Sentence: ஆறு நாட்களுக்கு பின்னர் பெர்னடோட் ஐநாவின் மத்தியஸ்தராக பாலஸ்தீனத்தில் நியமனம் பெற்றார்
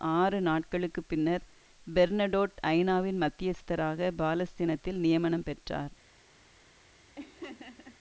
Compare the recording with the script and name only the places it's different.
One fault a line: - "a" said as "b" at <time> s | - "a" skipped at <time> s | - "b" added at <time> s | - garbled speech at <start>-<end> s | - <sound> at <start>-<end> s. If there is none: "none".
- laugh at 7.2-8.0 s